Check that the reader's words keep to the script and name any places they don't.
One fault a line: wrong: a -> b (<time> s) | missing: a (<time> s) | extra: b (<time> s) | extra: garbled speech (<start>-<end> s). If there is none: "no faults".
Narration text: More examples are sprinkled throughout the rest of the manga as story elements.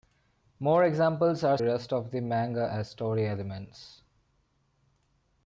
missing: sprinkled throughout the (1.6 s)